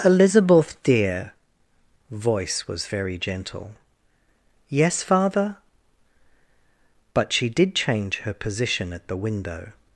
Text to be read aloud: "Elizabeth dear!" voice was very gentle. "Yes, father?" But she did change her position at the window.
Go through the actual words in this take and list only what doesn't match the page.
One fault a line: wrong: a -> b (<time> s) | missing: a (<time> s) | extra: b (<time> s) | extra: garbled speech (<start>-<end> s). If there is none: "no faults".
no faults